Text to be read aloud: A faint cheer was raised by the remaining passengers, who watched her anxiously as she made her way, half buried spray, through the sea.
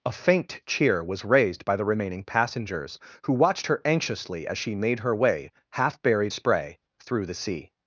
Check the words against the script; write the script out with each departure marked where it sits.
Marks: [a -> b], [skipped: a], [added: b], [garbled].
A faint cheer was raised by the remaining passengers, who watched her anxiously as she made her way, half buried spray, through the sea.